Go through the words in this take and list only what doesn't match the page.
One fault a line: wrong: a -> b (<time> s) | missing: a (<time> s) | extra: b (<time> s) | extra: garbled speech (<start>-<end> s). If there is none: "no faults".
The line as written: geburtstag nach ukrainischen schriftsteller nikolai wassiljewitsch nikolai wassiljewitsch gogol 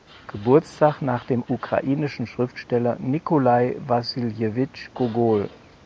extra: dem (1.2 s)
missing: nikolai wassiljewitsch (4.9 s)